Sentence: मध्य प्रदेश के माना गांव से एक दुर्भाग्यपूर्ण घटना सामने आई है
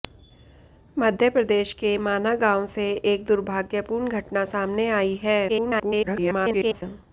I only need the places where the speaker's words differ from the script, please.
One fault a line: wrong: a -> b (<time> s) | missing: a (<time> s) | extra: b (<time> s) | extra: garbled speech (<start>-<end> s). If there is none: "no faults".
extra: garbled speech (5.5-6.8 s)